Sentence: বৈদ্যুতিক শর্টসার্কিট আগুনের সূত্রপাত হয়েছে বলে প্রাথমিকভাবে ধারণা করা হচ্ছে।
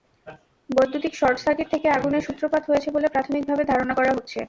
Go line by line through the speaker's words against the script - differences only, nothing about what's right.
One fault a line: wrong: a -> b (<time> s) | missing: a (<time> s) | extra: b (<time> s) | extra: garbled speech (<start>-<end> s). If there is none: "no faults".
extra: থেকে (1.7 s)